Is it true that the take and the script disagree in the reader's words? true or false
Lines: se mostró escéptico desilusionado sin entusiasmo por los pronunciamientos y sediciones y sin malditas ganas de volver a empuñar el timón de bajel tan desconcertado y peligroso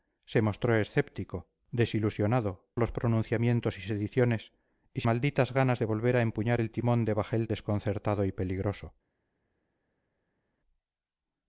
true